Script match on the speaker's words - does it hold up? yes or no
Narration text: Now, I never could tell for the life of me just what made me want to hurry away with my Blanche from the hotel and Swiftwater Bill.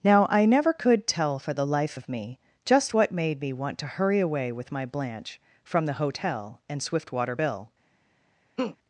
yes